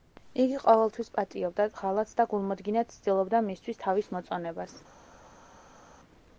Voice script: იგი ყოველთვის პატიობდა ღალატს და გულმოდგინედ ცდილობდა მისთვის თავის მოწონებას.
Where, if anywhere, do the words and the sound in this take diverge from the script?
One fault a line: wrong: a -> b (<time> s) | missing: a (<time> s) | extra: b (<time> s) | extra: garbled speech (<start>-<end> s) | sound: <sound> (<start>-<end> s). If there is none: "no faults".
no faults